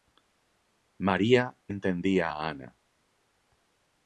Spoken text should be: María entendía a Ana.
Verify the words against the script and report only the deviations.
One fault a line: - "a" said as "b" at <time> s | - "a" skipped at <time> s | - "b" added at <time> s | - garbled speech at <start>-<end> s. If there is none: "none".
none